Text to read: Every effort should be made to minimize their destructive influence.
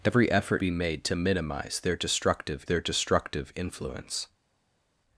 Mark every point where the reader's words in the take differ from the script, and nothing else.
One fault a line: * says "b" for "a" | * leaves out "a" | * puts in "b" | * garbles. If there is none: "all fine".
* leaves out "should"
* puts in "their destructive"